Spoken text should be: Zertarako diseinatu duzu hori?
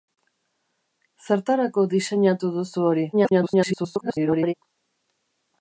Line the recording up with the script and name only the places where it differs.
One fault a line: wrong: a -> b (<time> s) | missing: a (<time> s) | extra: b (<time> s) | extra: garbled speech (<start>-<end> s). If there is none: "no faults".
extra: garbled speech (3.1-4.5 s)